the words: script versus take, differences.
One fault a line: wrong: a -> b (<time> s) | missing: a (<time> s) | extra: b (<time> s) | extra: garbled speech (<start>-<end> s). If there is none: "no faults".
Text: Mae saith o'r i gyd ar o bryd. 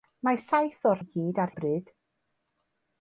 no faults